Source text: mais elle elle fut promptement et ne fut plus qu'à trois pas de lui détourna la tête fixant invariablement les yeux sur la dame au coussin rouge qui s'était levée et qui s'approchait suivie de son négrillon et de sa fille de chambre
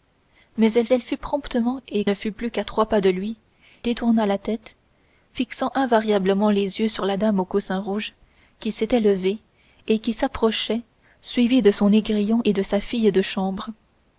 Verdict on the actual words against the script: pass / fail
pass